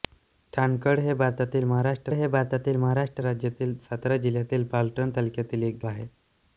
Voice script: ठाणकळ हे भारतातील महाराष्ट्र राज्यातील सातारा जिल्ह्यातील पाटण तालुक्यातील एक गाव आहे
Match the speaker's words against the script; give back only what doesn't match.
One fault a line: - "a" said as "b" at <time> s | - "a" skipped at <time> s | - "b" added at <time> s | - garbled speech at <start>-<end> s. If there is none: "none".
- "हे भारतातील महाराष्ट्र" added at 2.1 s
- "गाव" skipped at 5.8 s